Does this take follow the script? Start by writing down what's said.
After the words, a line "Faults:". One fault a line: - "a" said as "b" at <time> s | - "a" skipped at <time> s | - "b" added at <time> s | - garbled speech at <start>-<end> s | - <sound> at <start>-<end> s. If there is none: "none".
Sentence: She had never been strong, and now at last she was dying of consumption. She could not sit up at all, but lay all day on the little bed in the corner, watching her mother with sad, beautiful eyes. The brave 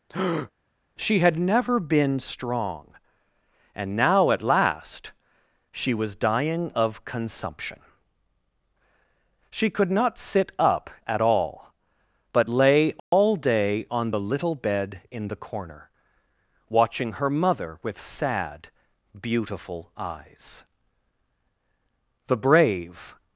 She had never been strong, and now at last she was dying of consumption. She could not sit up at all, but lay all day on the little bed in the corner, watching her mother with sad, beautiful eyes. The brave
Faults:
- breath at 0.1-0.5 s
- dropout at 13.0-13.1 s